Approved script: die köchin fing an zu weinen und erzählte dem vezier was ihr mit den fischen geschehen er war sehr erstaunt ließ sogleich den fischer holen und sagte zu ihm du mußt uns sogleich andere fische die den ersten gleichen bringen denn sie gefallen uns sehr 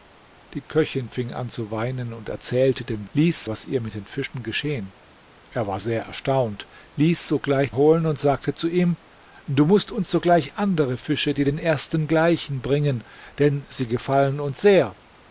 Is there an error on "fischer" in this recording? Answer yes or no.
yes